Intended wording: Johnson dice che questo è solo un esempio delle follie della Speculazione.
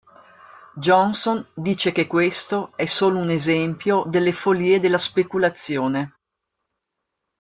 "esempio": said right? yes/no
yes